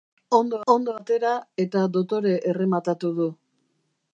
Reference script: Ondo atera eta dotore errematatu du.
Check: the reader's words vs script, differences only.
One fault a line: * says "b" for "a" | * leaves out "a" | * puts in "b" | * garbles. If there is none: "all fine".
* puts in "ondo"